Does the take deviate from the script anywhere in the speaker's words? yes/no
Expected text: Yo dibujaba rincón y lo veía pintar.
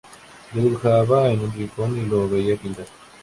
yes